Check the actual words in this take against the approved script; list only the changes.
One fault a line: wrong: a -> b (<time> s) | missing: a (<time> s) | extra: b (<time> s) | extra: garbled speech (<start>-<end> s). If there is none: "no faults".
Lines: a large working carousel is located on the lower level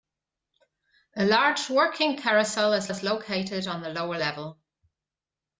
extra: is (2.9 s)